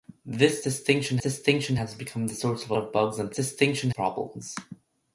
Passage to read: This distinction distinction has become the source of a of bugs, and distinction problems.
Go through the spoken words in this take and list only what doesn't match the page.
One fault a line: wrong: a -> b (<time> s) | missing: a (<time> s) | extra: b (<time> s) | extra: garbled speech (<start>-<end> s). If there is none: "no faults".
no faults